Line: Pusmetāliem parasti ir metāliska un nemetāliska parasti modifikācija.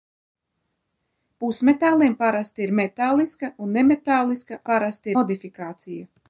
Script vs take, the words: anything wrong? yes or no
no